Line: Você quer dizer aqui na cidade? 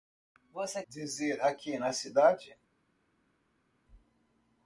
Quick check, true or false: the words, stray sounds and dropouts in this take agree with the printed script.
false